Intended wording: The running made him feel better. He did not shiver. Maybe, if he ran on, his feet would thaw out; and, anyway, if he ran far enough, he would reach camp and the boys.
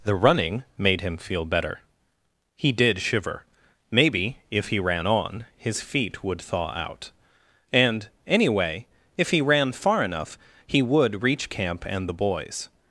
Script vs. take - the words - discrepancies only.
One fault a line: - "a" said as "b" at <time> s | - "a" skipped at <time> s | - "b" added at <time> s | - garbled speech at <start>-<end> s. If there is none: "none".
- "not" skipped at 3.0 s